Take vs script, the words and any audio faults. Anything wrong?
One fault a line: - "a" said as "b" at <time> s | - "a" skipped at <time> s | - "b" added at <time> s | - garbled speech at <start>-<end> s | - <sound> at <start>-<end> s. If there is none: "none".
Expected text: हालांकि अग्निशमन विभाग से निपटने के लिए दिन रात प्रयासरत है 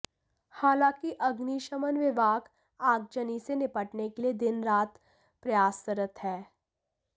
- "आगजनी" added at 2.8 s